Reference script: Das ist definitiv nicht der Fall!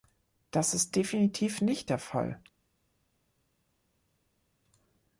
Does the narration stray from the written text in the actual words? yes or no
no